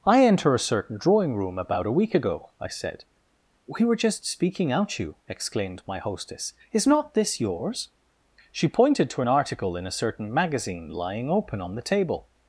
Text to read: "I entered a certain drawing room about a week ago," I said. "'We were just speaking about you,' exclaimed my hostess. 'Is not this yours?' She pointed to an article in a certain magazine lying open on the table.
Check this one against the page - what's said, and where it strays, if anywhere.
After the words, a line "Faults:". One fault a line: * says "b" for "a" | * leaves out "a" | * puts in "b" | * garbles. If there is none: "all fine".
"I enter a certain drawing room about a week ago," I said. "'We were just speaking out you,' exclaimed my hostess. 'Is not this yours?' She pointed to an article in a certain magazine lying open on the table.
Faults:
* says "enter" for "entered"
* says "out" for "about"